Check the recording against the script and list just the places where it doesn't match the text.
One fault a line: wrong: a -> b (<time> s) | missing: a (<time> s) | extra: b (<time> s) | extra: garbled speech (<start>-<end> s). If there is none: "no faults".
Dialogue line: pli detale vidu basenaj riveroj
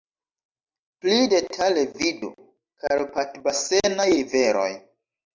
extra: karpat (2.8 s)